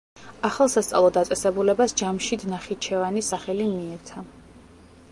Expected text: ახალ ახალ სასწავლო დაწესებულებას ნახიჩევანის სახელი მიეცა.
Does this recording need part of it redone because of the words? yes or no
yes